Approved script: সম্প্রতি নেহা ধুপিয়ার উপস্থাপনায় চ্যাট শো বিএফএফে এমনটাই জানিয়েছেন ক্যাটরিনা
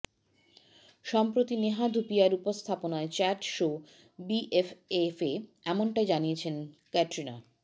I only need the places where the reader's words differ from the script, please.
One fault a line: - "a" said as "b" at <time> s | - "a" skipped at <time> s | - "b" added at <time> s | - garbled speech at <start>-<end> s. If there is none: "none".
none